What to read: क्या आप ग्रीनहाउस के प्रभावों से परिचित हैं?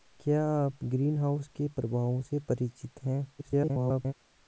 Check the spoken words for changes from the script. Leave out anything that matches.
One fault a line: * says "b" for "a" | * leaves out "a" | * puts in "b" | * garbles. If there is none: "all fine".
* garbles